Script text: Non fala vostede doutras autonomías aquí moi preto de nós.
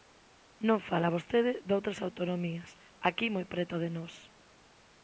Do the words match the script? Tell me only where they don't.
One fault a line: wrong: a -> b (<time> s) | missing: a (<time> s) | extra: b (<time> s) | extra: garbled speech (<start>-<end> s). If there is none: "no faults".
no faults